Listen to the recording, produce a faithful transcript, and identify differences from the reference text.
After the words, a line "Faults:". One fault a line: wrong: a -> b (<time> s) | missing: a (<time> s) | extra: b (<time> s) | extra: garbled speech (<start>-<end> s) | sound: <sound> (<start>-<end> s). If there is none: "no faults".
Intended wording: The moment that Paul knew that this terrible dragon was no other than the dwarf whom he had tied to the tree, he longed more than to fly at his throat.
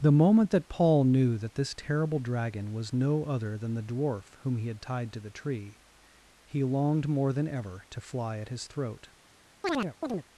The moment that Paul knew that this terrible dragon was no other than the dwarf whom he had tied to the tree, he longed more than ever to fly at his throat.
Faults:
extra: ever (7.5 s)
sound: chirp (9.6-10.2 s)